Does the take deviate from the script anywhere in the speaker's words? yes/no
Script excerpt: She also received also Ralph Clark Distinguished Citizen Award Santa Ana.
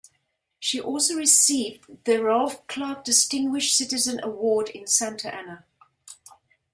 yes